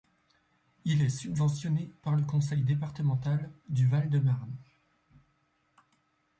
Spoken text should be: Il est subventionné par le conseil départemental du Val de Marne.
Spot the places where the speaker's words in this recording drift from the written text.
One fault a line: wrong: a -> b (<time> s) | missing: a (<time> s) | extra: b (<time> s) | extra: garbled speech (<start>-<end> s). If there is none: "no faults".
no faults